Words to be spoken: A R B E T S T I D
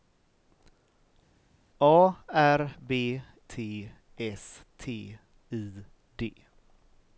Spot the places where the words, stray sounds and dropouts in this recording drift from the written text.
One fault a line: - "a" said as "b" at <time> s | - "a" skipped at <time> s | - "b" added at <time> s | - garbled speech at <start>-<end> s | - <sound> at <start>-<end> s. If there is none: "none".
- "E" skipped at 3.2 s